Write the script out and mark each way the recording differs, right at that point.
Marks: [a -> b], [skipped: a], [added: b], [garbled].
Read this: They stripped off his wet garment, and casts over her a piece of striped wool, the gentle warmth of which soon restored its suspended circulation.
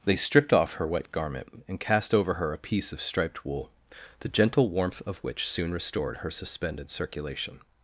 They stripped off [his -> her] wet garment, and [casts -> cast] over her a piece of striped wool, the gentle warmth of which soon restored [its -> her] suspended circulation.